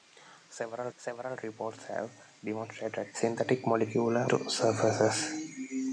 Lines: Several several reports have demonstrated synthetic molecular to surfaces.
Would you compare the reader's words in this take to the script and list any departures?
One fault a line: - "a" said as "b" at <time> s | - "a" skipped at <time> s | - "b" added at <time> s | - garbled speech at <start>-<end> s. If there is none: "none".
none